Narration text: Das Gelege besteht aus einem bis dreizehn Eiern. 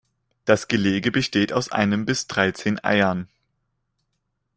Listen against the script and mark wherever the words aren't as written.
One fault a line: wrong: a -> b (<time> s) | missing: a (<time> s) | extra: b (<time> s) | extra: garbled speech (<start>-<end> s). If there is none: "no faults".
no faults